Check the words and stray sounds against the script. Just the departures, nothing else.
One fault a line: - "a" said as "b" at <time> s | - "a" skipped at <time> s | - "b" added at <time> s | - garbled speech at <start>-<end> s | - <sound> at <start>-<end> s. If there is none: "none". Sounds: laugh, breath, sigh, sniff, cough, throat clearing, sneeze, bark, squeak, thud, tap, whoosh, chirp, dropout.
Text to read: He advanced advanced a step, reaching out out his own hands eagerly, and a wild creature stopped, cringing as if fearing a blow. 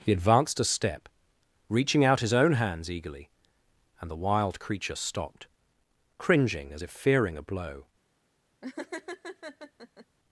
- "advanced" skipped at 0.6 s
- "out" skipped at 2.2 s
- "a" said as "the" at 4.1 s
- laugh at 8.6-10.1 s